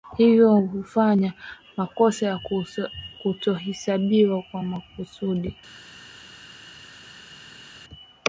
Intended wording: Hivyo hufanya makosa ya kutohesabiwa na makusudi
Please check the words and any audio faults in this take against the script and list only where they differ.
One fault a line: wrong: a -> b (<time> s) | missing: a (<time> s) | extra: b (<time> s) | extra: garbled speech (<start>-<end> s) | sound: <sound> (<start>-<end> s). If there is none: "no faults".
wrong: na -> kwa (4.4 s)